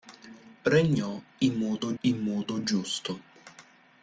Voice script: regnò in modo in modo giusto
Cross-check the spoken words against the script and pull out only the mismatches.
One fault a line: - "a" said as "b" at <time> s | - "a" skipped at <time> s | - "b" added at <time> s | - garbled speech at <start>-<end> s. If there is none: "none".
none